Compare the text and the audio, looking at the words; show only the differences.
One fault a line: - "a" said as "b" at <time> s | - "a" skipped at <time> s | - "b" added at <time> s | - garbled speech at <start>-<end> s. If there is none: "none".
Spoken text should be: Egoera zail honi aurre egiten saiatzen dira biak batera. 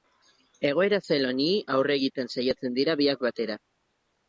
none